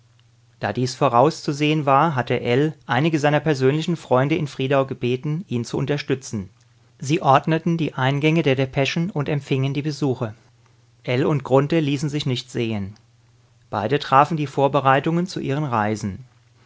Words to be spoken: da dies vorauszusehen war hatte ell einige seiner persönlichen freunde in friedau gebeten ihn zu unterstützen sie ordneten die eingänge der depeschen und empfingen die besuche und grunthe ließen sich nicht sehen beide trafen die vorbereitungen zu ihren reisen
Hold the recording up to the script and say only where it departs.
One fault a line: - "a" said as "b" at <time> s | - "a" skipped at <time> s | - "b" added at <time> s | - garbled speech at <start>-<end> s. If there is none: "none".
- "ell" added at 11.0 s